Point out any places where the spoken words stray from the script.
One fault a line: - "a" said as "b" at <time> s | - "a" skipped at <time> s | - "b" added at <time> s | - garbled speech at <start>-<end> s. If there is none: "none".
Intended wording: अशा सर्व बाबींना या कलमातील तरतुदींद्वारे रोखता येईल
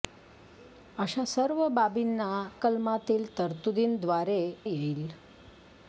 - "या" skipped at 2.3 s
- "रोखता" skipped at 4.4 s